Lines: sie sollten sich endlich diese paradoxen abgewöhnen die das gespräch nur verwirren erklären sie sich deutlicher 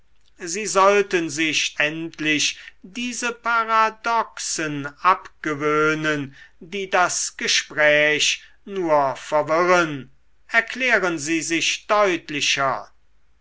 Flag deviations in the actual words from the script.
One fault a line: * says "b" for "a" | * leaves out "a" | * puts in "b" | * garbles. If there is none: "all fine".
all fine